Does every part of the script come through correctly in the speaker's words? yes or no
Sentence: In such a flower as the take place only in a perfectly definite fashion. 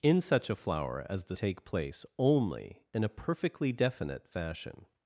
yes